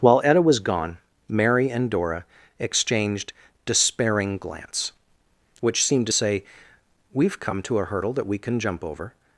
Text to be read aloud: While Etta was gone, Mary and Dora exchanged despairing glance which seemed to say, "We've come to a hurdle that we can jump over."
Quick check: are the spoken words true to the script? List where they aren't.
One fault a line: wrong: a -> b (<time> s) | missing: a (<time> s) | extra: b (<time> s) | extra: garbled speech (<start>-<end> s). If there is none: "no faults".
no faults